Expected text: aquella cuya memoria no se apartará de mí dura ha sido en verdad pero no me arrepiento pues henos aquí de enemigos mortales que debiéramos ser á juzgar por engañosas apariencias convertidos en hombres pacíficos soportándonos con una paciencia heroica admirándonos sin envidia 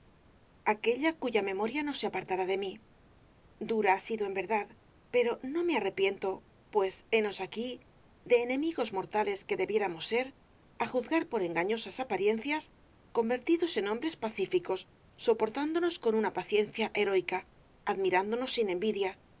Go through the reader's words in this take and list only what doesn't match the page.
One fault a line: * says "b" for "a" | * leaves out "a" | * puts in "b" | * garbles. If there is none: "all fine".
all fine